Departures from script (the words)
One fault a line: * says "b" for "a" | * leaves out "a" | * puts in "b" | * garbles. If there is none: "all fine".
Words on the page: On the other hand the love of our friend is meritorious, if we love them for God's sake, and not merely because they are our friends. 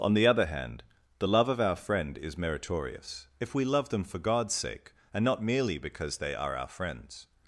all fine